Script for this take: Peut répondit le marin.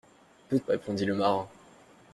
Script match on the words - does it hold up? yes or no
yes